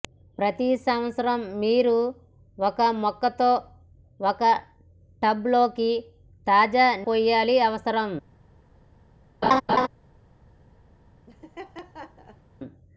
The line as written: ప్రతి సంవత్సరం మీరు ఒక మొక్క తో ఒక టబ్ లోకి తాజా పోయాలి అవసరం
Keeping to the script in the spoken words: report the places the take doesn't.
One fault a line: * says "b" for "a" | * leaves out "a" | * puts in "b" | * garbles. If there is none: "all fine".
all fine